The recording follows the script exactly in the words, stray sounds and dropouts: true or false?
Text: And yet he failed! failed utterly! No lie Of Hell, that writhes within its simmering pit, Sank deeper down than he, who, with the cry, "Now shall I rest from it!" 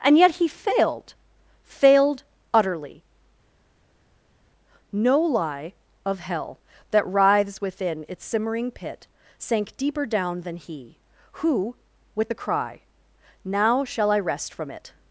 true